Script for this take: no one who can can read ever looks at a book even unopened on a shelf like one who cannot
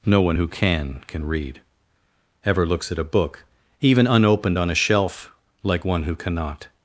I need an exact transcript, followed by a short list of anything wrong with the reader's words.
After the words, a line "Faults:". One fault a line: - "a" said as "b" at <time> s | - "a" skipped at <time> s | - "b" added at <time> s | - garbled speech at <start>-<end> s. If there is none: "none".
no one who can can read ever looks at a book even unopened on a shelf like one who cannot
Faults:
none